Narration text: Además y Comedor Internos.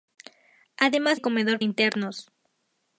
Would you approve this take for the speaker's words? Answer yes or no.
yes